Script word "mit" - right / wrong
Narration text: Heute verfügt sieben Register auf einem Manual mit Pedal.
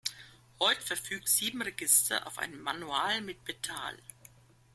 right